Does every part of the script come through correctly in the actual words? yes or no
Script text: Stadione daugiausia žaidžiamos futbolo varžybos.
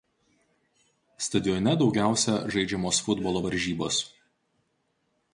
yes